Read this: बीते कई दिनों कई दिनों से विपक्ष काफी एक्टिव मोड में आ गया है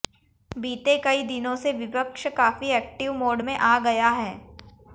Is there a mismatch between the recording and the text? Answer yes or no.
yes